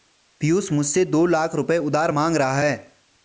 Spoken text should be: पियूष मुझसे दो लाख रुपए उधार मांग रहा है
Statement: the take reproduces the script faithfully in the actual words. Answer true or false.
true